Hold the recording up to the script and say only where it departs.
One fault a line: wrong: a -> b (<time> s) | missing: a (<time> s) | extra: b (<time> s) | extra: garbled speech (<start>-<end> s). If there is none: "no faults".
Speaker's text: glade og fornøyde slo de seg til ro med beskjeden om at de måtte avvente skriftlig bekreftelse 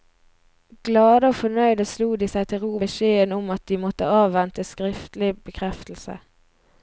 missing: med (2.8 s)